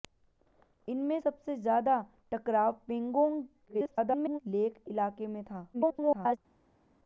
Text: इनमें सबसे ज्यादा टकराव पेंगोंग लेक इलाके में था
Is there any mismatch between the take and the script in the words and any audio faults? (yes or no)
yes